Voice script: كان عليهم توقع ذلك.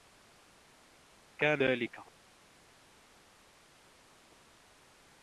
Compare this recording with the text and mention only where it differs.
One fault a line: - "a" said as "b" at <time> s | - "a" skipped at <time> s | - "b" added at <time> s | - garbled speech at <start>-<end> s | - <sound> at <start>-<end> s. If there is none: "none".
- "عليهم توقع" skipped at 1.6 s